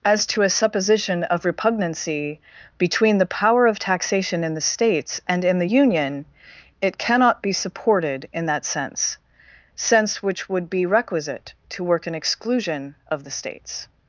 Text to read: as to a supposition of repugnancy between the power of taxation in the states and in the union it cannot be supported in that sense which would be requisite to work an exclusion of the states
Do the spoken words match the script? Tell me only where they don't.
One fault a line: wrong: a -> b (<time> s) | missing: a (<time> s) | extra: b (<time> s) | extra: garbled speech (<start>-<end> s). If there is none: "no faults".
extra: sense (9.8 s)